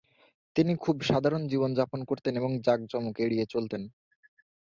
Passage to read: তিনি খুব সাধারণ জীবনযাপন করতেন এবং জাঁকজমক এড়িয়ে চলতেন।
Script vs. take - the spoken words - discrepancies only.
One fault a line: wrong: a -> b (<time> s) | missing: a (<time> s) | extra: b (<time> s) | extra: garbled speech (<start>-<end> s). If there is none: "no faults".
no faults